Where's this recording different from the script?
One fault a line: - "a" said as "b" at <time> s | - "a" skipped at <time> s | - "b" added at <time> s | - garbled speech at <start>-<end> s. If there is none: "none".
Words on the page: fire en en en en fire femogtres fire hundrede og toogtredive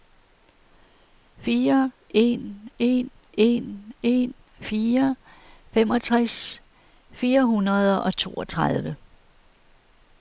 none